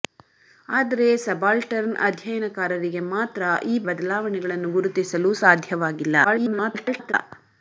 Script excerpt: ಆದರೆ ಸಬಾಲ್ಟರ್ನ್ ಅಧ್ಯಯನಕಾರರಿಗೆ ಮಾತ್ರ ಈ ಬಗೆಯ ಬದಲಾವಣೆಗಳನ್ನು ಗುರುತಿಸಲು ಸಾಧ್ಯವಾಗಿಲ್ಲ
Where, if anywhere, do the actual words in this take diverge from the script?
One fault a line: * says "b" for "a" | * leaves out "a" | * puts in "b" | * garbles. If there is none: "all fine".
* leaves out "ಬಗೆಯ"
* garbles